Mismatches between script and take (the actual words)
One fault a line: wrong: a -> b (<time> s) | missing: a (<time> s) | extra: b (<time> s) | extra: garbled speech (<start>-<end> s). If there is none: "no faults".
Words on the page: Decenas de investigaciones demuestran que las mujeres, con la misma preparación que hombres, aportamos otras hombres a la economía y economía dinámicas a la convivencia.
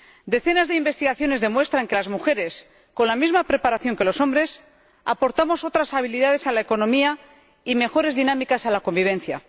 extra: los (4.0 s)
wrong: hombres -> habilidades (5.9 s)
wrong: economía -> mejores (7.7 s)